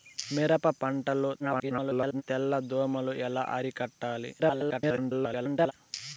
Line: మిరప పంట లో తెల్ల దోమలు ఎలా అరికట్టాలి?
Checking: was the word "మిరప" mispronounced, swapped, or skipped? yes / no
no